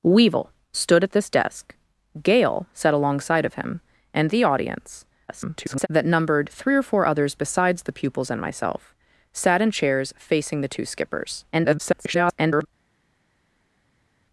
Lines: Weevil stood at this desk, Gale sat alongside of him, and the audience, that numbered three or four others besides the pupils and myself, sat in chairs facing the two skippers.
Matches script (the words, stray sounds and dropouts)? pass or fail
fail